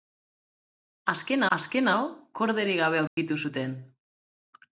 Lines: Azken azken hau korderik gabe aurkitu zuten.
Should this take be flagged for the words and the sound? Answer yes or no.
yes